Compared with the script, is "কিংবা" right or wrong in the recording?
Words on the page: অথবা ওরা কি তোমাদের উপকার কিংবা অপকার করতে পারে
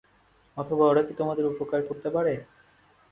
wrong